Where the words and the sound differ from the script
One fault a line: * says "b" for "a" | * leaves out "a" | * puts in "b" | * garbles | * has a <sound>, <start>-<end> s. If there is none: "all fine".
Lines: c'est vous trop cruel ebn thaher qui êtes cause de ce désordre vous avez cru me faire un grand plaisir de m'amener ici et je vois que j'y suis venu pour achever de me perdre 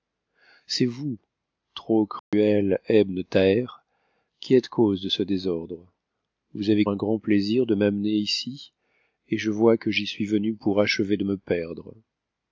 * has a dropout, 2.2-2.3 s
* leaves out "cru me faire"